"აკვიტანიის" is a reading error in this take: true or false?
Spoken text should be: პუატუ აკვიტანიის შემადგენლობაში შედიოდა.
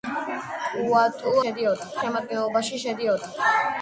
true